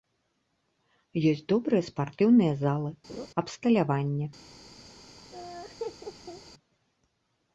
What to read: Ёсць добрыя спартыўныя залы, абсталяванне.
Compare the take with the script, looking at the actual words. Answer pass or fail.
pass